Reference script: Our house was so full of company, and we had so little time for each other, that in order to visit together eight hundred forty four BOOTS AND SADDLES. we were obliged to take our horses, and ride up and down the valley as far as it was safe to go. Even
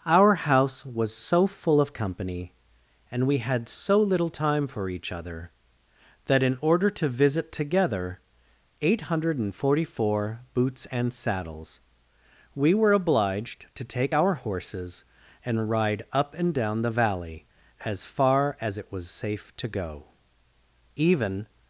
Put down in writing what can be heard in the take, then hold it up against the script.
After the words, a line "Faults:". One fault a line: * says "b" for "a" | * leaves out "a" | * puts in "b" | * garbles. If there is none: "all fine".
Our house was so full of company, and we had so little time for each other, that in order to visit together eight hundred forty four BOOTS AND SADDLES. we were obliged to take our horses, and ride up and down the valley as far as it was safe to go. Even
Faults:
all fine